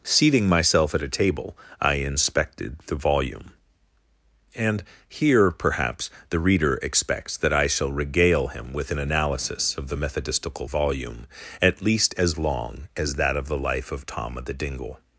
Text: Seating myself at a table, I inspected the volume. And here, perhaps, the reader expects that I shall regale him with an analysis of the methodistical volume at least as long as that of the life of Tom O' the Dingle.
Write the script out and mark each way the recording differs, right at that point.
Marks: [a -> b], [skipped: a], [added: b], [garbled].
Seating myself at a table, I inspected the volume. And here, perhaps, the reader expects that I shall regale him with an analysis of the methodistical volume at least as long as that of the life of Tom O' the Dingle.